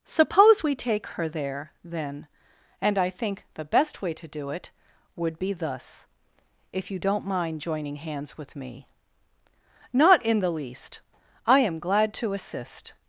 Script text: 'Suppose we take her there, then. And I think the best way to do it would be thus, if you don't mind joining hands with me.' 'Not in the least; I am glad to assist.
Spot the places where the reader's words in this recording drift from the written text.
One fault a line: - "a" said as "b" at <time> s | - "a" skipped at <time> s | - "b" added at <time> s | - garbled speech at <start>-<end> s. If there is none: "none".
none